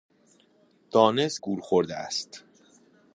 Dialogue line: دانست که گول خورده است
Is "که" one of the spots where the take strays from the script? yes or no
yes